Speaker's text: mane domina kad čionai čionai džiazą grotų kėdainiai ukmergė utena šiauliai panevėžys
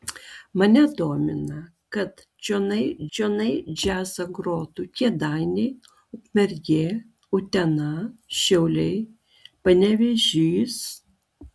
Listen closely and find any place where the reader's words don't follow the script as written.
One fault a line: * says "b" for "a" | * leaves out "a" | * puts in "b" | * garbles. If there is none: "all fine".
all fine